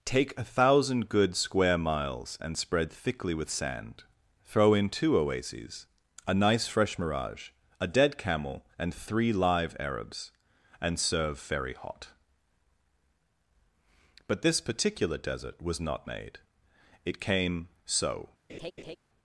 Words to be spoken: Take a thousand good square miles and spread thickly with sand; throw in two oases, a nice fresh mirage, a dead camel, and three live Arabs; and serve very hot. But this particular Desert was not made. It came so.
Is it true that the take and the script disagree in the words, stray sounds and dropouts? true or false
true